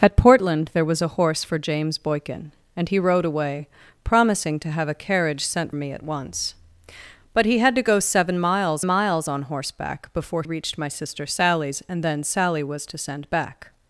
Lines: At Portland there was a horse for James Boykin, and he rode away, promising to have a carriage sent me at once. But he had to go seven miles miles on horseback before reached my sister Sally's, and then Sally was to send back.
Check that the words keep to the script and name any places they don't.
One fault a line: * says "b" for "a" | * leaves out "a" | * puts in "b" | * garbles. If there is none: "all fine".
all fine